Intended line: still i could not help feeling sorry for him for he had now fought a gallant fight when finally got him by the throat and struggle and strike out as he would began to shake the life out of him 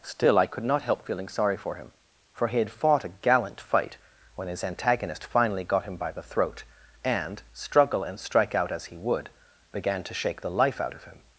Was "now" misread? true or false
true